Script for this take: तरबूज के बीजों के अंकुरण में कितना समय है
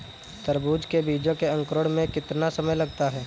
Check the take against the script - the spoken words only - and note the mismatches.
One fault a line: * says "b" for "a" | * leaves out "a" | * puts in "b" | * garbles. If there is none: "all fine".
* puts in "लगता"